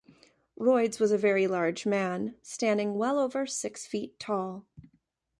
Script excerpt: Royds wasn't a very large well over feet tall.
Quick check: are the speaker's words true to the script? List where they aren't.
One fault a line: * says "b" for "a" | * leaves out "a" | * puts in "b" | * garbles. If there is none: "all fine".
* says "was" for "wasn't"
* puts in "man standing"
* puts in "six"